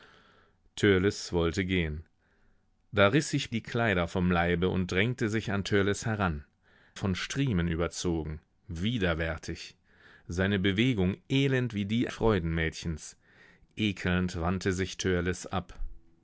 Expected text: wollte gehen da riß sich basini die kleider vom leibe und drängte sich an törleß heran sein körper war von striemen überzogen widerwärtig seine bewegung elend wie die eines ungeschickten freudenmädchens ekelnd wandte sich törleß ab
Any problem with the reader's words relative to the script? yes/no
yes